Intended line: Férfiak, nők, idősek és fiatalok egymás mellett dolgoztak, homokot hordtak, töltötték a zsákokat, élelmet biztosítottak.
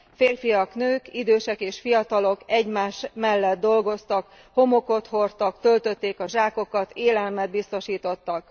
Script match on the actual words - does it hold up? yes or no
yes